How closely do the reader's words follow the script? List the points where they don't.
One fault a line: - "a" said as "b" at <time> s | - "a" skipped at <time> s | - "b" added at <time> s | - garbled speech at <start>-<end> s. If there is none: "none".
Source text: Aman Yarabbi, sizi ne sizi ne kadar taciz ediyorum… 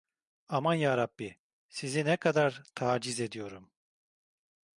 - "sizi ne" skipped at 2.2 s